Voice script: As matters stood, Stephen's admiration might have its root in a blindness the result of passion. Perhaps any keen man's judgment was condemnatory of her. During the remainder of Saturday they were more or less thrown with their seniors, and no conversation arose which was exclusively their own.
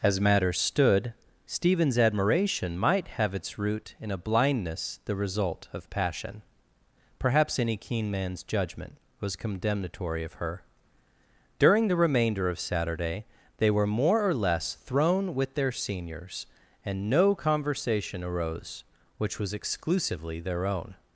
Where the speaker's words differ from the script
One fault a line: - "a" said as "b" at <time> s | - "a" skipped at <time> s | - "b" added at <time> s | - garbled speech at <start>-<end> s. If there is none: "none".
none